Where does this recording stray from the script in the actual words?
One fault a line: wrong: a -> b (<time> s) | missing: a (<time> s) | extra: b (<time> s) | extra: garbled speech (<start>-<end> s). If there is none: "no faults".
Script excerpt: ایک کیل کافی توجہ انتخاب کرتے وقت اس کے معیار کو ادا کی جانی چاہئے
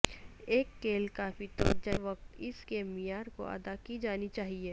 missing: انتخاب کرتے (1.9 s)